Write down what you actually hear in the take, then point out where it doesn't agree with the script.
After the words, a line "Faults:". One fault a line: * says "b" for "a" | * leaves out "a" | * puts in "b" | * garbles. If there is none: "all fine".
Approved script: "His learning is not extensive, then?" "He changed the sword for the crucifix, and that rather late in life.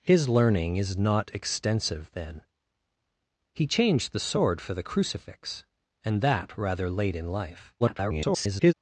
"His learning is not extensive, then?" "He changed the sword for the crucifix, and that rather late in life. [garbled]
Faults:
* garbles